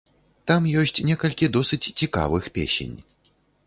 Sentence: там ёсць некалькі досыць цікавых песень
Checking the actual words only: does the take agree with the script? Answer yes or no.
yes